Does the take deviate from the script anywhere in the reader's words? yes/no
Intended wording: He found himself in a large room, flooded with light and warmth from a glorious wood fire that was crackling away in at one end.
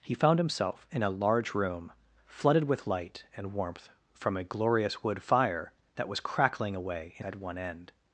no